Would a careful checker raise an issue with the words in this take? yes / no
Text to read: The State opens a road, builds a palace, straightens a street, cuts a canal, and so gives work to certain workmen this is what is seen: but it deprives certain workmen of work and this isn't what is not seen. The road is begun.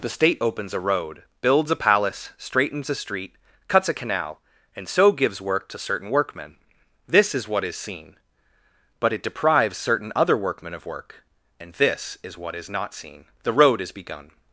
yes